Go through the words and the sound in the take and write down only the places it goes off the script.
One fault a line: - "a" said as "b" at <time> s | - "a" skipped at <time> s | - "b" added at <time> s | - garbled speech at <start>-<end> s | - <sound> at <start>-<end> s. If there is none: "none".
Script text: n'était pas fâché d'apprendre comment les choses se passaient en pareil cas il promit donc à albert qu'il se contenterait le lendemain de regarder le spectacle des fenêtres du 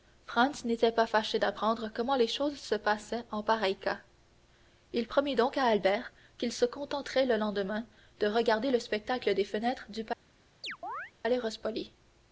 - chirp at 10.6-11.1 s